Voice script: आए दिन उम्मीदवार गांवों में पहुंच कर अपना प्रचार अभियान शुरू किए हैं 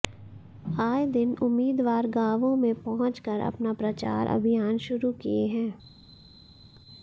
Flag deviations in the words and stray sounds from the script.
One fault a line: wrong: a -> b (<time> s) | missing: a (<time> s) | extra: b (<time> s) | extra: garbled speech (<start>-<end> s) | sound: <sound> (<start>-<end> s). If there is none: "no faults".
no faults